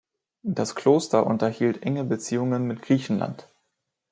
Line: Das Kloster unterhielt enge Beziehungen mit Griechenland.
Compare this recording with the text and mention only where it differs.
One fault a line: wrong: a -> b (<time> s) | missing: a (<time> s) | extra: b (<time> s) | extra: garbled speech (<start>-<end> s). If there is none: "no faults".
no faults